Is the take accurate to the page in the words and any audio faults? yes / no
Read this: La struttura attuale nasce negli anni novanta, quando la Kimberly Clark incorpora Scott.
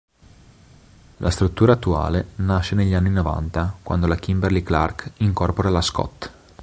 no